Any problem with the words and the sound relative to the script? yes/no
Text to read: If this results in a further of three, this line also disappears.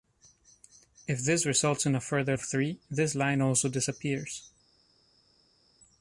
no